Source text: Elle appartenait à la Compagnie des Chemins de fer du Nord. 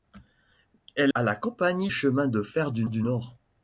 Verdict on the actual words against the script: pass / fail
fail